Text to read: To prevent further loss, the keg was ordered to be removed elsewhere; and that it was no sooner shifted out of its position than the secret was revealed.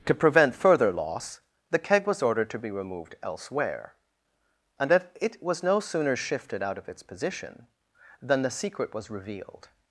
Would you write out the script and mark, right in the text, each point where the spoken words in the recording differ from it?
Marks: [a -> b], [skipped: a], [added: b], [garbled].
To prevent further loss, the keg was ordered to be removed elsewhere; and that it was no sooner shifted out of its position than the secret was revealed.